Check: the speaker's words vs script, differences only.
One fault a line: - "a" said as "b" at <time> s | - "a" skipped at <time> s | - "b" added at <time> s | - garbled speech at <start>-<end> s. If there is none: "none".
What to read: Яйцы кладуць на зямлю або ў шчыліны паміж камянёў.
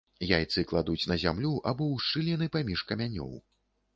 none